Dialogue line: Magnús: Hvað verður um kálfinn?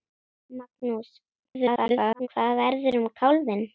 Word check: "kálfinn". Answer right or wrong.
right